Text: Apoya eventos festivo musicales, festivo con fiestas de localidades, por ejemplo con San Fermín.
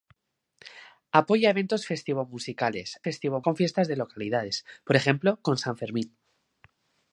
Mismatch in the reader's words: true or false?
false